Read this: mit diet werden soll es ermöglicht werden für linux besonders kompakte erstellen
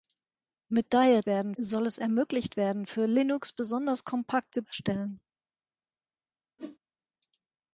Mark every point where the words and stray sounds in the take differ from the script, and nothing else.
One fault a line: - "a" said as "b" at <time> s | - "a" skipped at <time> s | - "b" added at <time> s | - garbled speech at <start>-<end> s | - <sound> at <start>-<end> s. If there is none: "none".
- whoosh at 6.6-6.8 s